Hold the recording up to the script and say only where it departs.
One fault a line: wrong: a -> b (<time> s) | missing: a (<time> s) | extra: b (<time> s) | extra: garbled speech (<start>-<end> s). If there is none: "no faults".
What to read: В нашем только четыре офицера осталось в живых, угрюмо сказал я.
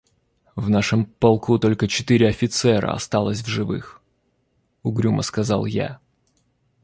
extra: полку (1.1 s)